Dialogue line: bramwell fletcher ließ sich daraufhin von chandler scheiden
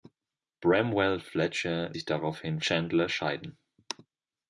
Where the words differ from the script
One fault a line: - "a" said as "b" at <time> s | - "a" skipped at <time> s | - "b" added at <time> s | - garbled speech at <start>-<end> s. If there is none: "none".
- "ließ" skipped at 1.9 s
- "von" skipped at 2.6 s